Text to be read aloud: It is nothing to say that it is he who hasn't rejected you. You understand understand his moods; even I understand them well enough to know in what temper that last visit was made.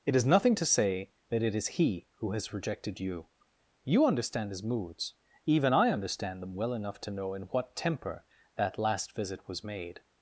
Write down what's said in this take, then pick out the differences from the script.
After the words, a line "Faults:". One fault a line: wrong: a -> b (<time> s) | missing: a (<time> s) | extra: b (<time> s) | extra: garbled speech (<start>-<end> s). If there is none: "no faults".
It is nothing to say that it is he who has rejected you. You understand his moods; even I understand them well enough to know in what temper that last visit was made.
Faults:
wrong: hasn't -> has (2.3 s)
missing: understand (4.5 s)